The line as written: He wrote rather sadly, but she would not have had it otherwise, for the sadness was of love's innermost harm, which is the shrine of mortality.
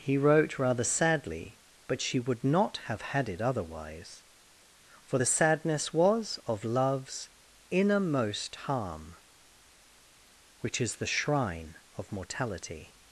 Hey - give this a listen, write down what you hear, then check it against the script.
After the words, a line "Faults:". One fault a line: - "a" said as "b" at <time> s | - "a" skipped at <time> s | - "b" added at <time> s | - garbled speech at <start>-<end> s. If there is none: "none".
He wrote rather sadly, but she would not have had it otherwise, for the sadness was of love's innermost harm, which is the shrine of mortality.
Faults:
none